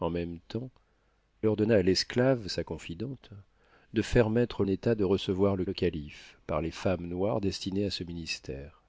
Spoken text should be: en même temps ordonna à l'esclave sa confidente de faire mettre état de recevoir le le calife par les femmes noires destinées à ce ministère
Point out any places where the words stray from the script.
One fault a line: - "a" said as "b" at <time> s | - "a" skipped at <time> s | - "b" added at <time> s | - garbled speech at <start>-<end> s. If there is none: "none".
none